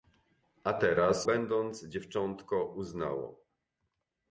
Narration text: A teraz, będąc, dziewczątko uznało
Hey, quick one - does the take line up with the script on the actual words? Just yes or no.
yes